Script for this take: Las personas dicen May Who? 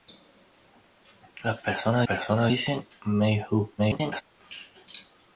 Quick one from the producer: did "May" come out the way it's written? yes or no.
yes